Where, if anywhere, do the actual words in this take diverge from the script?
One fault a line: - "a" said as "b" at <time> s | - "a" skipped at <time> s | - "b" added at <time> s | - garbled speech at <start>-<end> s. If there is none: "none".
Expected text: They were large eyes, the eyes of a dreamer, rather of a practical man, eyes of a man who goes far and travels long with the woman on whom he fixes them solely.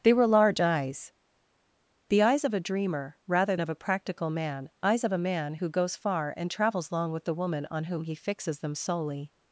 none